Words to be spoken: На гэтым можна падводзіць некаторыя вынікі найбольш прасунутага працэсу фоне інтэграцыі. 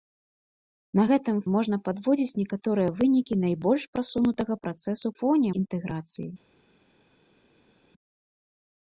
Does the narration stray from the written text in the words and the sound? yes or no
no